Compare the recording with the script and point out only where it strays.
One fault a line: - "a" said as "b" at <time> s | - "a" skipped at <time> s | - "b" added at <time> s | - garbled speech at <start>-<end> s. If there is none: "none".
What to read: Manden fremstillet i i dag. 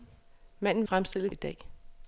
none